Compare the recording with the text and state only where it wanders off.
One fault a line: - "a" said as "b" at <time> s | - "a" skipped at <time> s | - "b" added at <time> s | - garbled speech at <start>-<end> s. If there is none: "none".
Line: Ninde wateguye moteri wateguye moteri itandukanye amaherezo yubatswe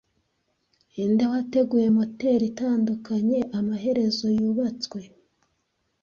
- "wateguye moteri" skipped at 2.4 s